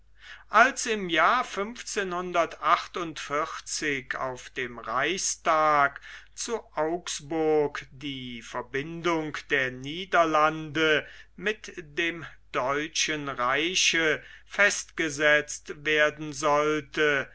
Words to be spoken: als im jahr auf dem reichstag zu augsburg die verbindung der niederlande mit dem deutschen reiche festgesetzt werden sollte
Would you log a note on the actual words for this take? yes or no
no